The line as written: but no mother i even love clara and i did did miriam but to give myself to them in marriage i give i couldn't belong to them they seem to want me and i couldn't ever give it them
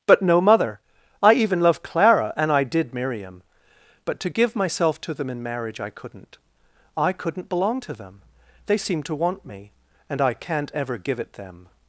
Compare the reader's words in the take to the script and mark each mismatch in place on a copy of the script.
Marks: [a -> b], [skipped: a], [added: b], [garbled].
but no mother i even love clara and i did [skipped: did] miriam but to give myself to them in marriage i [give -> couldn't] i couldn't belong to them they seem to want me and i [couldn't -> can't] ever give it them